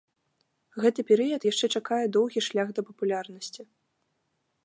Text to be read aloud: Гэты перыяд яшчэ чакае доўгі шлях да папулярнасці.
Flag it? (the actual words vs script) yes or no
no